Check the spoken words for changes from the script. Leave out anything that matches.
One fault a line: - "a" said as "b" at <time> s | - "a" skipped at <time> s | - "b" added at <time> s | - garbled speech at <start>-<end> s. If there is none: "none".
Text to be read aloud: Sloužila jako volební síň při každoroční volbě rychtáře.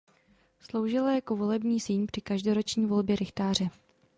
none